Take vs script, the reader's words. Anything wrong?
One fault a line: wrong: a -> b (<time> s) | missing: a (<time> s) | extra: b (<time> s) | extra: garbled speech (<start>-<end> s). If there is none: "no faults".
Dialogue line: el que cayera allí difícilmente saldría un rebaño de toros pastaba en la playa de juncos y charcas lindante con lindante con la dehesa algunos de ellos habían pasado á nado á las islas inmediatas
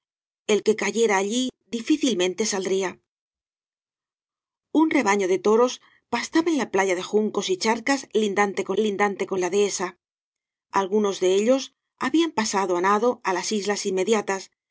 no faults